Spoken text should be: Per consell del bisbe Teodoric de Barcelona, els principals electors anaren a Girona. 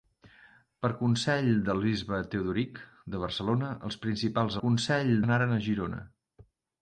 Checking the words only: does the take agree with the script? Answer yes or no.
no